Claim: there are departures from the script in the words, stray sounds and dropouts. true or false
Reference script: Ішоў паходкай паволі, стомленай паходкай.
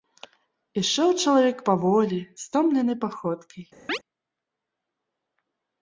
true